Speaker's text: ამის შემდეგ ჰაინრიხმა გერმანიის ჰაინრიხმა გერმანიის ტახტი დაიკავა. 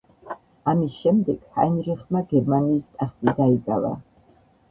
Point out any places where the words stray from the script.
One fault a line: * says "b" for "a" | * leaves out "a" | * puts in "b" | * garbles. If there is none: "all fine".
* leaves out "ჰაინრიხმა გერმანიის"